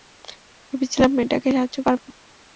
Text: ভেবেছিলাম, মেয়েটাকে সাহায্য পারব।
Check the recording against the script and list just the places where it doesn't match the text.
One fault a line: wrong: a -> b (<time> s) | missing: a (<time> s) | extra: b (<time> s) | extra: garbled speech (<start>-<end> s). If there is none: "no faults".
no faults